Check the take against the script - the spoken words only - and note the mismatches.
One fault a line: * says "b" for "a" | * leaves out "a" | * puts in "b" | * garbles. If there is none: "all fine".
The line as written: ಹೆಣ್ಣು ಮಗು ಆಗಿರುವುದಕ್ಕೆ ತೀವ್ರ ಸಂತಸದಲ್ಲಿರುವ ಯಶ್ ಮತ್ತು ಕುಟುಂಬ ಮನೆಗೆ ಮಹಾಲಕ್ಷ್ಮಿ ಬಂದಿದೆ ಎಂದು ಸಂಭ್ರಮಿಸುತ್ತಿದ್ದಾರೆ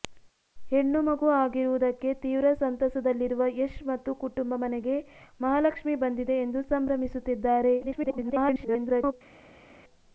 * garbles